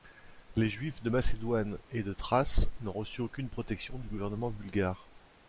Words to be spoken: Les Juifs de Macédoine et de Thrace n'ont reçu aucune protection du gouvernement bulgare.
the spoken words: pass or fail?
pass